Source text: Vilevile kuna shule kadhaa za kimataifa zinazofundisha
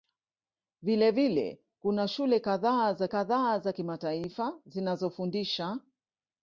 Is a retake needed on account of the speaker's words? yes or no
yes